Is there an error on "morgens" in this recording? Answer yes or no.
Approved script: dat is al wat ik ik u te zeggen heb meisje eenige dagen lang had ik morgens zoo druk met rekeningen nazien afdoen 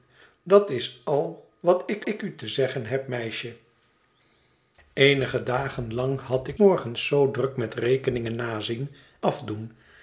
no